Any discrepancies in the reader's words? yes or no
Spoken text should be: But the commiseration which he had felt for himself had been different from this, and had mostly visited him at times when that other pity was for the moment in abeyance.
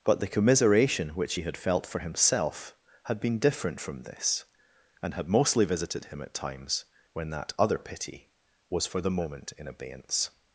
no